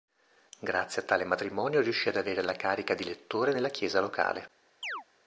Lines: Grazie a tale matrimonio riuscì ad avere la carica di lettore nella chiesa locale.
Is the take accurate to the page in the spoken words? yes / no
yes